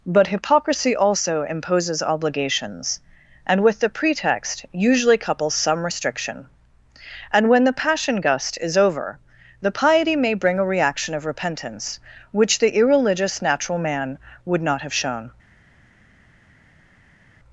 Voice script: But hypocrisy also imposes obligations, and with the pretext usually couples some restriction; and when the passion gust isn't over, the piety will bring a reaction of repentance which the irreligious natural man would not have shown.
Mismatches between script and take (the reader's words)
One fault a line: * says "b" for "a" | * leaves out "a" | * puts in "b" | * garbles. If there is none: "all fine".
* says "is" for "isn't"
* says "may" for "will"